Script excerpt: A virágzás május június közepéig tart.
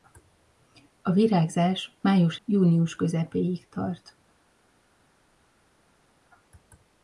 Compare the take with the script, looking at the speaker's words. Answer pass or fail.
pass